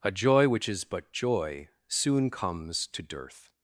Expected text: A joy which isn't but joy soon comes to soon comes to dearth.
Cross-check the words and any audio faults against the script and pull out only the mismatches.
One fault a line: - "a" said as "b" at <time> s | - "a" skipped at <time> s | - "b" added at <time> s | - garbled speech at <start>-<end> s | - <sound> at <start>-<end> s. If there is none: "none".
- "isn't" said as "is" at 0.7 s
- "soon comes to" skipped at 3.0 s